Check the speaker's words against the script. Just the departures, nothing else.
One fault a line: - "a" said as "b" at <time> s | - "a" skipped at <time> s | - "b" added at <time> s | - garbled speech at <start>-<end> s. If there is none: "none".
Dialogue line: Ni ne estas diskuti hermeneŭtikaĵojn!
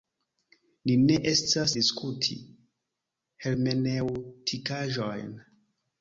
none